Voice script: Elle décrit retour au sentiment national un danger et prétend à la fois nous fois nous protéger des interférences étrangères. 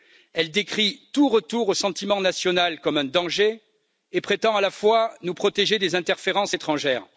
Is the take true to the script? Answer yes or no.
no